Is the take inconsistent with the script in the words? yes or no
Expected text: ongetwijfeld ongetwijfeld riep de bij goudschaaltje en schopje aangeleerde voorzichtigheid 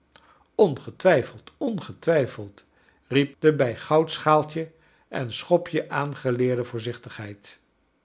no